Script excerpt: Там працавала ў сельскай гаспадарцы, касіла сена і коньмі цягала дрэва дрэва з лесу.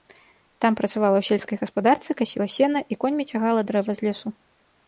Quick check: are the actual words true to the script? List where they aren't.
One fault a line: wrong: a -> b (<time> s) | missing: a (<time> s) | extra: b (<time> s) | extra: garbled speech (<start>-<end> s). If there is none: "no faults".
missing: дрэва (3.9 s)